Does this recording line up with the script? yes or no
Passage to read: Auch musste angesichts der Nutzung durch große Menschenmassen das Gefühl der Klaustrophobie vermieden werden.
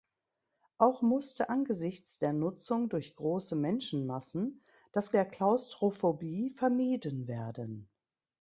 no